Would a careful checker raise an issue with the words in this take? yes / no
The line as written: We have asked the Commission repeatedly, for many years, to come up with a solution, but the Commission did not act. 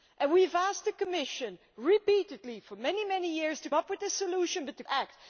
yes